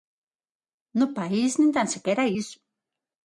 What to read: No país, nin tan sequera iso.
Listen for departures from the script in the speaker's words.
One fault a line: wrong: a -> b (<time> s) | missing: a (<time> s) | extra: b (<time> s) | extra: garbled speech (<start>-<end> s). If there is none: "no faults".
no faults